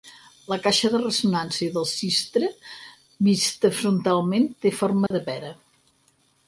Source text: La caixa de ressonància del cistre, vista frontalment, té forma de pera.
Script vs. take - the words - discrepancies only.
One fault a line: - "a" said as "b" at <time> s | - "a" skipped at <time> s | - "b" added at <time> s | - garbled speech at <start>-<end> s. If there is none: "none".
none